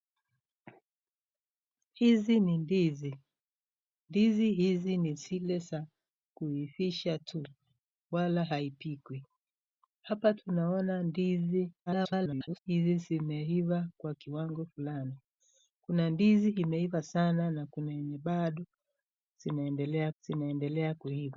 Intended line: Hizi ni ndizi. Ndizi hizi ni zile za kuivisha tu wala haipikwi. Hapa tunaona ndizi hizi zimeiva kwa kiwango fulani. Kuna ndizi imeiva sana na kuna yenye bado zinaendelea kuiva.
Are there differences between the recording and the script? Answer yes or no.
yes